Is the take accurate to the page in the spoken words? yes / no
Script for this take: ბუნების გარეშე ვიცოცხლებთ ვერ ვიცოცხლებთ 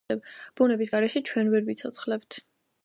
no